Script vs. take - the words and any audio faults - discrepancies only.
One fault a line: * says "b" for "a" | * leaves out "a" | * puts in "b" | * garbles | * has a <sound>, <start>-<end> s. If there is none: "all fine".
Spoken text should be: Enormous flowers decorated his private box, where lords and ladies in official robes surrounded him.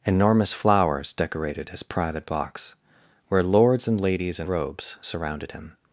* leaves out "official"